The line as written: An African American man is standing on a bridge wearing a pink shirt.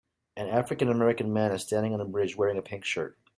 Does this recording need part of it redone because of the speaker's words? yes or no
no